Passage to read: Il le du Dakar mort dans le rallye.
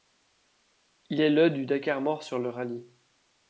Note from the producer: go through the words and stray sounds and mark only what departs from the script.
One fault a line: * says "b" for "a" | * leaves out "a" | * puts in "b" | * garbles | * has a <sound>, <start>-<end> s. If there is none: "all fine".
* puts in "est"
* says "sur" for "dans"